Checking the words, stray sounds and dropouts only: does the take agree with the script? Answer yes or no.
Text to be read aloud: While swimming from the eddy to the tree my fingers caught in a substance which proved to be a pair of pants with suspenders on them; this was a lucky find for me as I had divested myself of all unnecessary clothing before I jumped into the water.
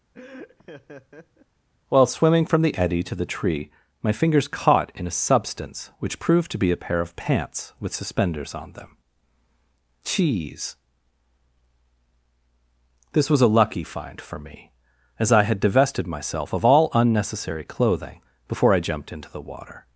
no